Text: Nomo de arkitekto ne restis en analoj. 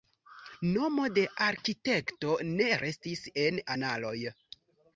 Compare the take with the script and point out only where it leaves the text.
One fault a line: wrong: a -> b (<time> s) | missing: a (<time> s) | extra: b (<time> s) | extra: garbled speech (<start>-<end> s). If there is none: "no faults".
no faults